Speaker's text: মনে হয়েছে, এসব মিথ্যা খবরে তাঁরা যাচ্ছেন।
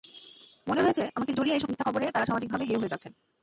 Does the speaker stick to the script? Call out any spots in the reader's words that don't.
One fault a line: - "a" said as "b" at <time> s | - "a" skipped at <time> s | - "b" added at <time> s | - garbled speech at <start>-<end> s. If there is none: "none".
- "আমাকে জড়িয়ে" added at 1.1 s
- "সামাজিকভাবে হেয় হয়ে" added at 2.3 s